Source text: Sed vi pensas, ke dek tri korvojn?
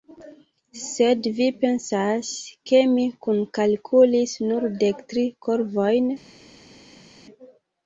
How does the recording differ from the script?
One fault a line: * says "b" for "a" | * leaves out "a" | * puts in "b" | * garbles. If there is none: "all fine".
* puts in "mi kunkalkulis nur"